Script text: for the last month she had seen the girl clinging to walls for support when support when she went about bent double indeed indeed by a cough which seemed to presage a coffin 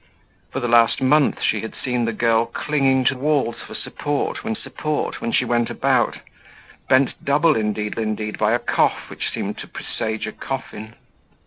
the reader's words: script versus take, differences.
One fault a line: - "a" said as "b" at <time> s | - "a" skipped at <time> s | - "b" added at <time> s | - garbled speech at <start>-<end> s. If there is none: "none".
none